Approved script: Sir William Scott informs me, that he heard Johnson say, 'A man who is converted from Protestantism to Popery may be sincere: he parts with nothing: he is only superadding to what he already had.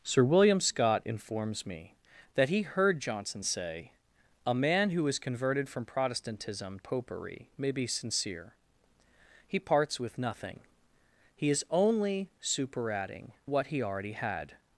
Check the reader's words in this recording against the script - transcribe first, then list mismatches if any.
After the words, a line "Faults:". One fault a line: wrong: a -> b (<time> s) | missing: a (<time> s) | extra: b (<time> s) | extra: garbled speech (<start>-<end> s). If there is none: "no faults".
Sir William Scott informs me, that he heard Johnson say, 'A man who is converted from Protestantism Popery may be sincere: he parts with nothing: he is only superadding what he already had.
Faults:
missing: to (6.8 s)
missing: to (13.3 s)